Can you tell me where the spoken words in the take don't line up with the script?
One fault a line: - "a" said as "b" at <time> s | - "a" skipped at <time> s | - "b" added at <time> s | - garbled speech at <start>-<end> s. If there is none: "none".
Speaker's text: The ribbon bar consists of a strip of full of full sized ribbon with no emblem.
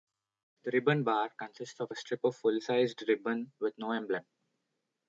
- "of full" skipped at 2.6 s